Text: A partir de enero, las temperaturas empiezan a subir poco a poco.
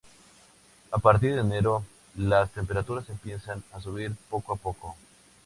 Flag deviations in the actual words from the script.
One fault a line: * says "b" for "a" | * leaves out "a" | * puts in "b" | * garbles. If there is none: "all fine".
all fine